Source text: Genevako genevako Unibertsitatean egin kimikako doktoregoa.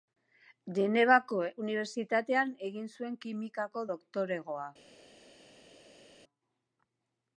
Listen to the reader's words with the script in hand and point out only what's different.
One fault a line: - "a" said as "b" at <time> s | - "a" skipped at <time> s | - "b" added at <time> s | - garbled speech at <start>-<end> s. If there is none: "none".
- "genevako" skipped at 1.4 s
- "zuen" added at 2.9 s